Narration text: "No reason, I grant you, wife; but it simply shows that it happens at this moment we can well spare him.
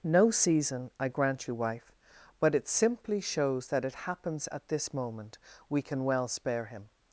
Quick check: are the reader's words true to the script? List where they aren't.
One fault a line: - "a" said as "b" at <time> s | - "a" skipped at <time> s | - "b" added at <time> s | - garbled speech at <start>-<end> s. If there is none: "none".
- "reason" said as "season" at 0.3 s